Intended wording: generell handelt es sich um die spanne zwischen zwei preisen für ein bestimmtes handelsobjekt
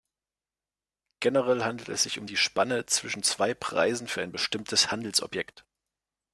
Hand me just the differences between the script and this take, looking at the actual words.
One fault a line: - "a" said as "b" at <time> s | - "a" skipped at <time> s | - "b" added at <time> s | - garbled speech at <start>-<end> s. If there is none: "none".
none